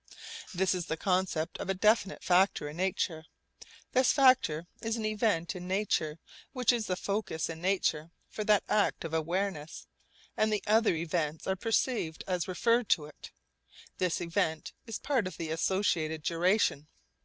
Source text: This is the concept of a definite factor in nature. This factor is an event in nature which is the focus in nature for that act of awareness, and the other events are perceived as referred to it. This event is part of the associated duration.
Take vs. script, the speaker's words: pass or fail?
pass